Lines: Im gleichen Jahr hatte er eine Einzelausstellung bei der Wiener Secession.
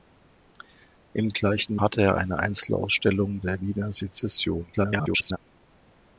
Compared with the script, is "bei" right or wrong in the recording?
wrong